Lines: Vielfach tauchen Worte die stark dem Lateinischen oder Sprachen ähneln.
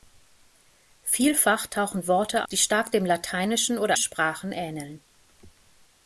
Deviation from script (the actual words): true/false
false